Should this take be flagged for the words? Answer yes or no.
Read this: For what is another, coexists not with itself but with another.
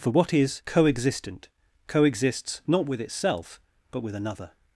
yes